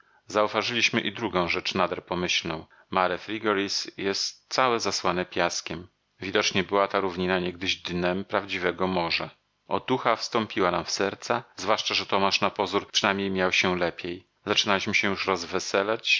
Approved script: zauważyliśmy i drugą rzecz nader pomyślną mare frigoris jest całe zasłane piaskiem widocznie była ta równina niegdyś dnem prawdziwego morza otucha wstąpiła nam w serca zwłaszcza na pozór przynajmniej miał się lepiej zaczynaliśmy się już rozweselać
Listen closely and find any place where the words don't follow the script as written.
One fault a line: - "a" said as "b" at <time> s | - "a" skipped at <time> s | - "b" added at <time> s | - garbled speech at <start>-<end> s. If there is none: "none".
- "że tomasz" added at 11.9 s